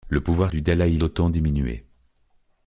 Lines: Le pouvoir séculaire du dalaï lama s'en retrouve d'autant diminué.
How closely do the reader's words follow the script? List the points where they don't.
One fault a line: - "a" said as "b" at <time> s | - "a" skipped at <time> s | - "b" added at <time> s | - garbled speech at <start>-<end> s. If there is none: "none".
- "séculaire" skipped at 0.5 s
- "lama s'en retrouve" skipped at 1.0 s